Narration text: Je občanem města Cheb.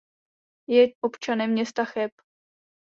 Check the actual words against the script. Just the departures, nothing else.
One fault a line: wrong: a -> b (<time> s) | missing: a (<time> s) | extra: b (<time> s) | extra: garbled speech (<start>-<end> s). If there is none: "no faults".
no faults